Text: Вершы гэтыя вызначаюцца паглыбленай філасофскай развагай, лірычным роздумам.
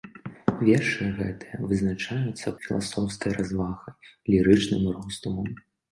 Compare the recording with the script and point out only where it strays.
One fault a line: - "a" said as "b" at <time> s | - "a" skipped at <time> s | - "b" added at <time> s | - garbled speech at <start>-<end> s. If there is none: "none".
- "паглыбленай" skipped at 2.5 s